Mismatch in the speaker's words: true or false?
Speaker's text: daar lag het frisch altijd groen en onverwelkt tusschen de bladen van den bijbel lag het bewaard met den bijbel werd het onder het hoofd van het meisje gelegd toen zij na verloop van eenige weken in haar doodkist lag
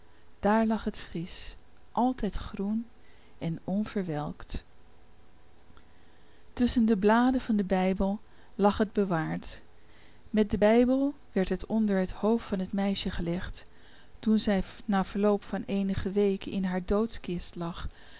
false